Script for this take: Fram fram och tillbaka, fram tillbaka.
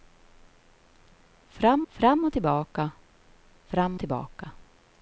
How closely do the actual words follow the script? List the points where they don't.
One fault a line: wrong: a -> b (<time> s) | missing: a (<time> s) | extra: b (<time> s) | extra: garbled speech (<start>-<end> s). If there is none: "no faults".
no faults